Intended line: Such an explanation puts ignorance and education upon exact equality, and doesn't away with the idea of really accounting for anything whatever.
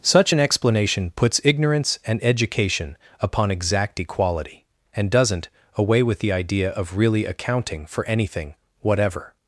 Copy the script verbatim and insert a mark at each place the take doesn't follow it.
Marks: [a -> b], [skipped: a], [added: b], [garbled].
Such an explanation puts ignorance and education upon exact equality, and doesn't away with the idea of really accounting for anything whatever.